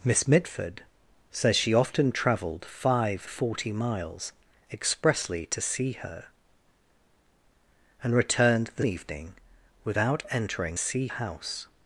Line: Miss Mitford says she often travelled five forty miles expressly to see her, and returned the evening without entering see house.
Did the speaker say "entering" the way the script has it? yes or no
yes